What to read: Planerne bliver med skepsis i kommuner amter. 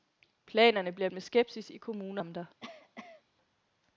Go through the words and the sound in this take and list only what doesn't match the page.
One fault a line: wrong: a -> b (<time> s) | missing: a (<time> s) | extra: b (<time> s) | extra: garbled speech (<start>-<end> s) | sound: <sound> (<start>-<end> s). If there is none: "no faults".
sound: cough (2.6-3.2 s)